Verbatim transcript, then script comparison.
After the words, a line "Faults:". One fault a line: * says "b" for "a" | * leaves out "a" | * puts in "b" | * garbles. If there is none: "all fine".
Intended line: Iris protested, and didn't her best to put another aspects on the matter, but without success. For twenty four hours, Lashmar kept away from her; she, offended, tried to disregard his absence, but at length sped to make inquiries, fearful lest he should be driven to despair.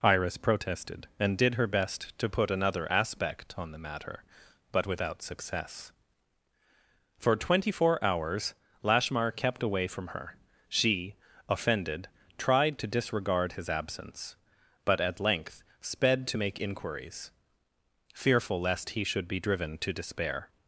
Iris protested, and did her best to put another aspect on the matter, but without success. For twenty four hours, Lashmar kept away from her; she, offended, tried to disregard his absence, but at length sped to make inquiries, fearful lest he should be driven to despair.
Faults:
* says "did" for "didn't"
* says "aspect" for "aspects"